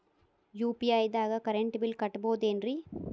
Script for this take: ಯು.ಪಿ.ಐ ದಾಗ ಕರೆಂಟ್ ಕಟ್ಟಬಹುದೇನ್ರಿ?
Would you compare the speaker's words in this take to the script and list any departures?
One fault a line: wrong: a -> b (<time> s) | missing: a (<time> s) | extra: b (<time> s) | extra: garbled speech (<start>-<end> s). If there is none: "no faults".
extra: ಬಿಲ್ (1.8 s)